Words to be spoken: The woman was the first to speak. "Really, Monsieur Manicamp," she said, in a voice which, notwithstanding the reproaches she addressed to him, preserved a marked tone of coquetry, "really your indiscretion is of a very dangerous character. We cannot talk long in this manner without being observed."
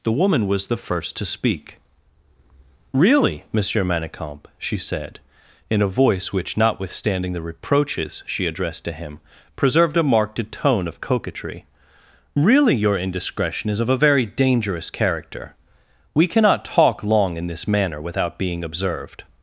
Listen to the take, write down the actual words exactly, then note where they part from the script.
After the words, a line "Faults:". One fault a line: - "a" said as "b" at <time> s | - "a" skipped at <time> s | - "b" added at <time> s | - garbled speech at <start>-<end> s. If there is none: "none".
The woman was the first to speak. "Really, Monsieur Manicamp," she said, in a voice which, notwithstanding the reproaches she addressed to him, preserved a marked tone of coquetry, "really your indiscretion is of a very dangerous character. We cannot talk long in this manner without being observed."
Faults:
none